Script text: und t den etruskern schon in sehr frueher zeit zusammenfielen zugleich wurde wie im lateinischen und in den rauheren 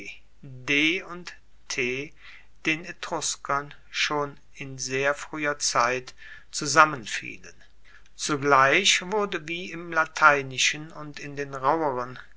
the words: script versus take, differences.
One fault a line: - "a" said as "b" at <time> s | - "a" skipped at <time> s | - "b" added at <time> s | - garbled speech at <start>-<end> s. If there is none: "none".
none